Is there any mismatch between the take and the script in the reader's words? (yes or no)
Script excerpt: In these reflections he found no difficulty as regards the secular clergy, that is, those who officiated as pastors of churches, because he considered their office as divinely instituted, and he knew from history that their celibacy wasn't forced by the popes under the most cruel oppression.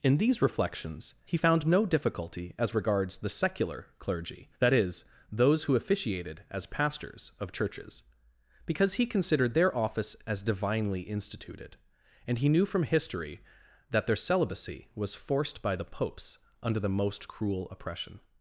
yes